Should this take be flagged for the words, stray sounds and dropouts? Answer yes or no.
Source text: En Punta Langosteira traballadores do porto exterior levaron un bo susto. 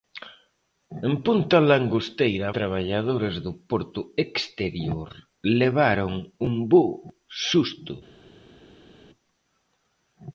no